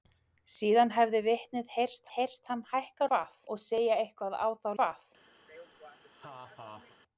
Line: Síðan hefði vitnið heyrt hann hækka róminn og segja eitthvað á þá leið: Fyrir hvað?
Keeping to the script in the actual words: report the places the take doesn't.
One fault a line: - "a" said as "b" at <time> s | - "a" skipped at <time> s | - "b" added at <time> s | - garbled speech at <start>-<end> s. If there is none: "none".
- "heyrt" added at 2.1 s
- "róminn" said as "hvað" at 3.1 s
- "leið Fyrir" skipped at 4.7 s